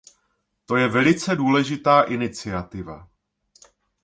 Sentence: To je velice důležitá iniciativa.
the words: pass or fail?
pass